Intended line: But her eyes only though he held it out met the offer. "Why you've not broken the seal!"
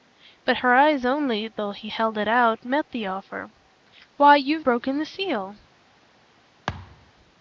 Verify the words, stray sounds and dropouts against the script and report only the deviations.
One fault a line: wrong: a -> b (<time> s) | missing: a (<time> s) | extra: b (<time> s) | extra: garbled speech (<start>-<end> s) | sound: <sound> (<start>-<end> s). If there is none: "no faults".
missing: not (4.6 s)
sound: thud (6.7-7.1 s)